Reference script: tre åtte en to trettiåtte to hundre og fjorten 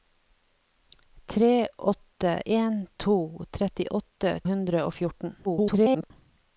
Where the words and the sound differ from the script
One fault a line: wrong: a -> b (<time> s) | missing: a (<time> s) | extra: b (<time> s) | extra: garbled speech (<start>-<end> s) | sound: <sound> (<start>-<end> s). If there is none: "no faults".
missing: to (4.3 s)
extra: garbled speech (5.4-6.1 s)